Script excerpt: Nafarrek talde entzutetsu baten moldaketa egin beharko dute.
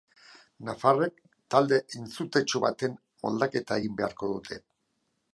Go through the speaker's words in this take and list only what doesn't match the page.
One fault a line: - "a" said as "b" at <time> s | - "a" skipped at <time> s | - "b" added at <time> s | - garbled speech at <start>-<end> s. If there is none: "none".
none